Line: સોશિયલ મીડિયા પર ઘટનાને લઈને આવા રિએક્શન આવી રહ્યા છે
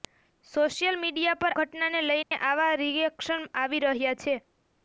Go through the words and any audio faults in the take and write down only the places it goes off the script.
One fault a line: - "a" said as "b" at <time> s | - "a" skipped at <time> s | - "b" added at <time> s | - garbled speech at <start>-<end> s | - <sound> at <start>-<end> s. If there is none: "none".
- dropout at 2.2-2.3 s